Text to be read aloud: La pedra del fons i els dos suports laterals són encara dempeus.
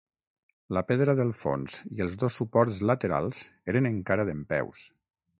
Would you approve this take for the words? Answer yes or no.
no